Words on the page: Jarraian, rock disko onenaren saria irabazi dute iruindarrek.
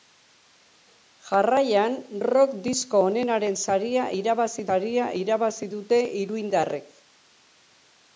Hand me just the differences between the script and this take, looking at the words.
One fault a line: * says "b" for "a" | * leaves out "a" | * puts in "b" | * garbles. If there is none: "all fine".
* puts in "saria irabazi"